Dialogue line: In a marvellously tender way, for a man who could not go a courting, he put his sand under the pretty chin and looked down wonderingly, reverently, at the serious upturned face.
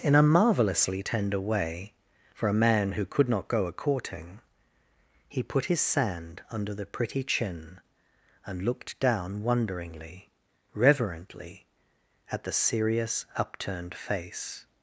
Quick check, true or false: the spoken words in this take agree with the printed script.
true